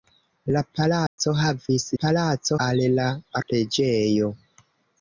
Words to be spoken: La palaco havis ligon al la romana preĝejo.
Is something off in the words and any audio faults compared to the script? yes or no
yes